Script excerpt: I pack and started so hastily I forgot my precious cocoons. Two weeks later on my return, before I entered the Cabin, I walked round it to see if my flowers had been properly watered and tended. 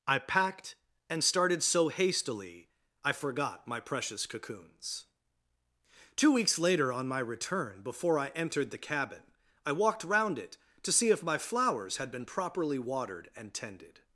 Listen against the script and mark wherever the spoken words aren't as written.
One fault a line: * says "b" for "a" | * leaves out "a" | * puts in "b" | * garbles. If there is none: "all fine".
* says "packed" for "pack"